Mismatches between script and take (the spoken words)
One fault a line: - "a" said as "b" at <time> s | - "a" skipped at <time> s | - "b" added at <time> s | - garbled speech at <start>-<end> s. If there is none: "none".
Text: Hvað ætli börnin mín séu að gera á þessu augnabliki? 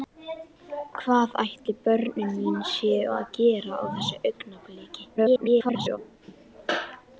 - garbled speech at 5.2-6.0 s